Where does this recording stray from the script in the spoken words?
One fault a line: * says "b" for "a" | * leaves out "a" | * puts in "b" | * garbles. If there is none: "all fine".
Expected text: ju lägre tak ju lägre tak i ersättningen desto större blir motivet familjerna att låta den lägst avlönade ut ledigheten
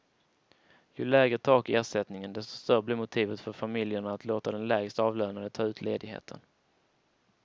* leaves out "ju lägre tak"
* puts in "för"
* puts in "ta"